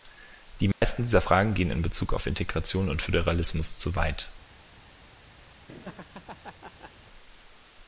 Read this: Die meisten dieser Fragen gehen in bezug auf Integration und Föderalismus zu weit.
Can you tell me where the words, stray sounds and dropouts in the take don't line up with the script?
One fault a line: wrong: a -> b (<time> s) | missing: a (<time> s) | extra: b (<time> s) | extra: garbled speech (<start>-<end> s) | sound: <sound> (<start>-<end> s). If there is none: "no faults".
sound: dropout (0.7-0.8 s)
sound: laugh (5.7-6.9 s)